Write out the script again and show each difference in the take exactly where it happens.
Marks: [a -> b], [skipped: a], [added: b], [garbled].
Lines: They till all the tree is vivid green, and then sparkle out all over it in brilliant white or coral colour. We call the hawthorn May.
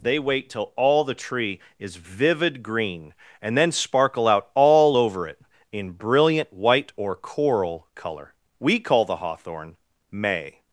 They [added: wait] till all the tree is vivid green, and then sparkle out all over it in brilliant white or coral colour. We call the hawthorn May.